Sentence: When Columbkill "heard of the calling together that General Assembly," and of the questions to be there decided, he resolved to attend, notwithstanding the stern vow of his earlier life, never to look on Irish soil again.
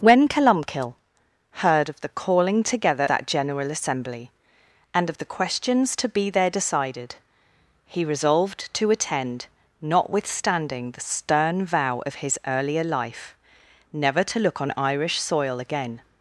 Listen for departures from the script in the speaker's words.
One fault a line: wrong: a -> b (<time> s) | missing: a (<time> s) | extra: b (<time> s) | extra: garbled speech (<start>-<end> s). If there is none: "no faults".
no faults